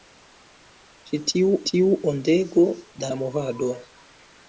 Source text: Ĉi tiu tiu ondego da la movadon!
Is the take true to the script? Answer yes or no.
yes